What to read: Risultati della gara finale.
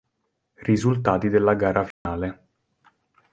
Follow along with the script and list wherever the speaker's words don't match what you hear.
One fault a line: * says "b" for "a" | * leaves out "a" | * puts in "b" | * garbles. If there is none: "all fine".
all fine